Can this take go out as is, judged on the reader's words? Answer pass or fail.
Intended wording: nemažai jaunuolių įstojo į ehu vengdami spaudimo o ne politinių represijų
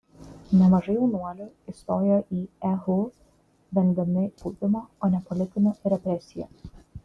pass